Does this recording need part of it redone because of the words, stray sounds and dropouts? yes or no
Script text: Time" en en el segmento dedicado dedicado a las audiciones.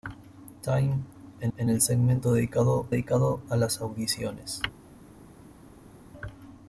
no